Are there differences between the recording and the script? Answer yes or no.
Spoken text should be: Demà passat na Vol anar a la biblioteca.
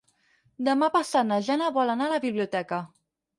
yes